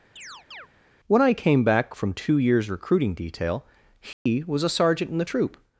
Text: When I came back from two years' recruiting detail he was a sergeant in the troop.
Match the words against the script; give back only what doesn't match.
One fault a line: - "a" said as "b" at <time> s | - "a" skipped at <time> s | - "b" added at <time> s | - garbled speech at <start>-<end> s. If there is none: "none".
none